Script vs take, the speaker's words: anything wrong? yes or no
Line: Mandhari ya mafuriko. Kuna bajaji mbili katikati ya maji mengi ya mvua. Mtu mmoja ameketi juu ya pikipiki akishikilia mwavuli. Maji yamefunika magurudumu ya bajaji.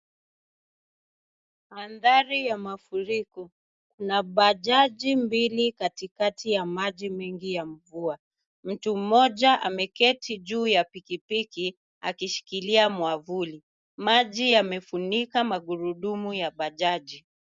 no